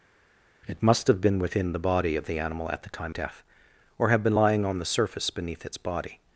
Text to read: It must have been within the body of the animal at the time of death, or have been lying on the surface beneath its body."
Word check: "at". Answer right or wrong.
right